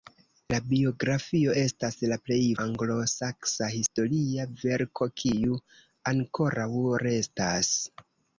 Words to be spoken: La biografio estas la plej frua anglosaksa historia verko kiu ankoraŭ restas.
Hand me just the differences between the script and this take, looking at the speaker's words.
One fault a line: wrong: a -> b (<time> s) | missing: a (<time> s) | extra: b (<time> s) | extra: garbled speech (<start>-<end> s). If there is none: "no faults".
missing: frua (2.4 s)